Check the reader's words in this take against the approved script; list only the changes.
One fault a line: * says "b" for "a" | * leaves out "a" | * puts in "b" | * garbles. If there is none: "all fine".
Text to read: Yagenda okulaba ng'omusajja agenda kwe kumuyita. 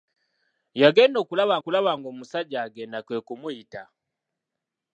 * puts in "okulaba"